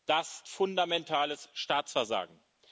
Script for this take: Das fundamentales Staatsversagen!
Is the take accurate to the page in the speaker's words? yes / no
yes